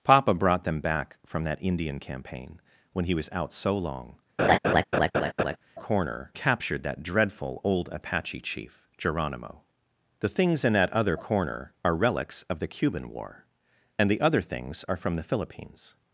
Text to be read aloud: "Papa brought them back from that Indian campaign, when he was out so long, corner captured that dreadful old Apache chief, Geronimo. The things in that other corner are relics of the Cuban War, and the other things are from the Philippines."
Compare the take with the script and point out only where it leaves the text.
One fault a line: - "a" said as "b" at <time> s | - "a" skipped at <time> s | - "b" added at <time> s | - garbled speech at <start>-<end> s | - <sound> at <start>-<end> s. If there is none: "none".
- laugh at 4.4-5.6 s